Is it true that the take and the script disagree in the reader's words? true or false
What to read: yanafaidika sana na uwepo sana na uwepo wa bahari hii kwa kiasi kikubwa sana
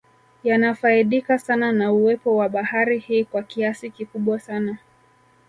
true